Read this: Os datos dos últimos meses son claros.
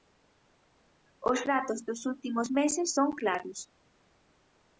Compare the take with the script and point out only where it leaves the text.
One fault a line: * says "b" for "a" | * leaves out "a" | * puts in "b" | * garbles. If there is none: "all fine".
all fine